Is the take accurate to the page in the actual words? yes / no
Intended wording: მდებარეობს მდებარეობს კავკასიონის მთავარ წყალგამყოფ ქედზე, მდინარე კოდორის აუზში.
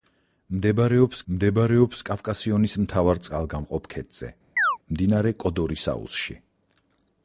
yes